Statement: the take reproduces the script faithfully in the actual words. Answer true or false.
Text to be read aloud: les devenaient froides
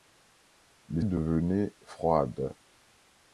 true